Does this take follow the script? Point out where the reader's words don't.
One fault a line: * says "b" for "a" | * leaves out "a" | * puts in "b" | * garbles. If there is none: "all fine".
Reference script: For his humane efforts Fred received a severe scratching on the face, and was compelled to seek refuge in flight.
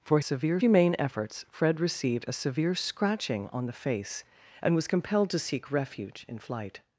* says "severe" for "his"